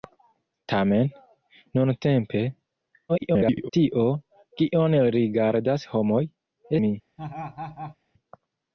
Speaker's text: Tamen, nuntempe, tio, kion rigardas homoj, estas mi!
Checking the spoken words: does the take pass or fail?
fail